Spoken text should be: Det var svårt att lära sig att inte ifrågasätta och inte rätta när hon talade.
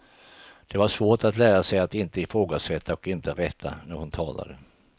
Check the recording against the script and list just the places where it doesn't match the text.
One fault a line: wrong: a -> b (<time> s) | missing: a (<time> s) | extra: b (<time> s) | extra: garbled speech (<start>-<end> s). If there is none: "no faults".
no faults